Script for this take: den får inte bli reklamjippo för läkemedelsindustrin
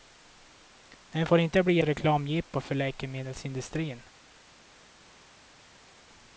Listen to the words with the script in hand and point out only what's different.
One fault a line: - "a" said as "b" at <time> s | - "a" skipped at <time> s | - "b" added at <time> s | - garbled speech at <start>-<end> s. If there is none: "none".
none